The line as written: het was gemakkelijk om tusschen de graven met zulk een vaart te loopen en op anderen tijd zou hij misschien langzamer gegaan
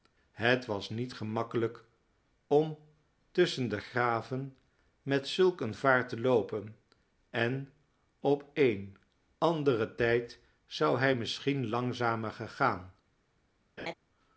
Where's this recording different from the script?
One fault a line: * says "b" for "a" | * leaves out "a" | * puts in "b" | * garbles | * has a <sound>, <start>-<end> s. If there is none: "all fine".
* puts in "niet"
* puts in "een"
* has a laugh, 13.8-13.9 s